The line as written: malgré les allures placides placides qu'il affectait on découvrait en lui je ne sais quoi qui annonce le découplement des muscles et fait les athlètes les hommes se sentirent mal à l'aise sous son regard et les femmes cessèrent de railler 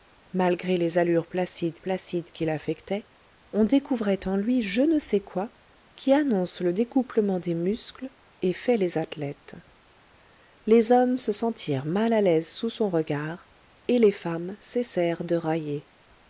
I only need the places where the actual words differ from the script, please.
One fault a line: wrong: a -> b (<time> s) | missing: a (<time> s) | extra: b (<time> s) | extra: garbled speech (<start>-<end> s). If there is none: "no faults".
no faults